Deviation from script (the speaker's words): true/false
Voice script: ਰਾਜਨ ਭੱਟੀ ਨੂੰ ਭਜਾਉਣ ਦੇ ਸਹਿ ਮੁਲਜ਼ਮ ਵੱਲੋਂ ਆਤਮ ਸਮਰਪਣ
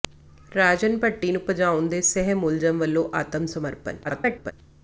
true